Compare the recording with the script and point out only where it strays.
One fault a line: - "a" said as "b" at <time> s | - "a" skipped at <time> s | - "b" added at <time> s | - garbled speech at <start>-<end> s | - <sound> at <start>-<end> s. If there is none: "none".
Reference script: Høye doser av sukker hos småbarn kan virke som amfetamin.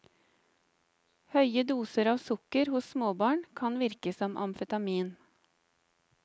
none